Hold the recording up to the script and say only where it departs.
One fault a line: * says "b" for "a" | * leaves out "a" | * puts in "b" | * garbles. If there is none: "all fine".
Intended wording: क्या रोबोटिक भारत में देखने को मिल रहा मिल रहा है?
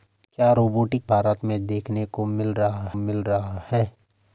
all fine